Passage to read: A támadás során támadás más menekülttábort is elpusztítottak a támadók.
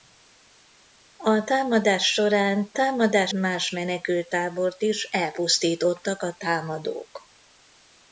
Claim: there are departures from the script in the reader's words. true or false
false